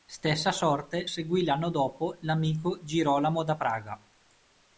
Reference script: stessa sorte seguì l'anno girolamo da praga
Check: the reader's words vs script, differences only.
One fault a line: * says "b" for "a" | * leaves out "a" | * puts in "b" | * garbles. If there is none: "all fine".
* puts in "dopo l'amico"